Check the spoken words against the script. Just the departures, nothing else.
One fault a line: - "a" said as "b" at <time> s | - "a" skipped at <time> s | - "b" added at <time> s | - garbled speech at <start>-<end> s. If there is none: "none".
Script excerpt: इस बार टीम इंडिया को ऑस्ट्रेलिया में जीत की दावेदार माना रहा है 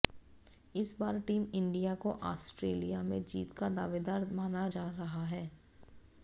- "की" said as "का" at 3.5 s
- "जा" added at 4.7 s